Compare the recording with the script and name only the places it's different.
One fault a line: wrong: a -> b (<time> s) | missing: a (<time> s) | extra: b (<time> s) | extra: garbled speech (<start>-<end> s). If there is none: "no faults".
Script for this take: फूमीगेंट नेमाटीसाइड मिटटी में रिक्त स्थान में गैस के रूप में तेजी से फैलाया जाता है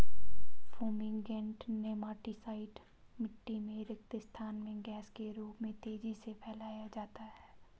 no faults